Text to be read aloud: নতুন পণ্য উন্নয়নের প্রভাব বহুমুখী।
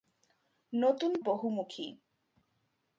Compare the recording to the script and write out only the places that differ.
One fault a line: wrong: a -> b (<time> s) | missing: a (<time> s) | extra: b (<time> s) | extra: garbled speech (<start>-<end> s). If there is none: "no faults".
missing: পণ্য উন্নয়নের প্রভাব (1.1 s)